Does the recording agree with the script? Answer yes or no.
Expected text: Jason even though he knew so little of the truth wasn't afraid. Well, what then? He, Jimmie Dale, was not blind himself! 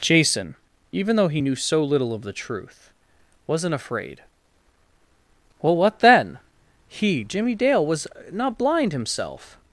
yes